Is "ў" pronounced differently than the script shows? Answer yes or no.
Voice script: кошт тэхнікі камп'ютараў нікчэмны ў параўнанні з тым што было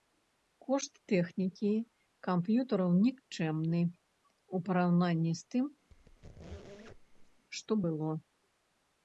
no